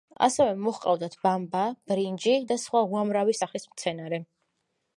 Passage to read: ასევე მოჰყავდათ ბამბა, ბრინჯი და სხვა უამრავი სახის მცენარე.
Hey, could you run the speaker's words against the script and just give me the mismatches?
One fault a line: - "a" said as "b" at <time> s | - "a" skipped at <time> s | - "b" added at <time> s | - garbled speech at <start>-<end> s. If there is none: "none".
none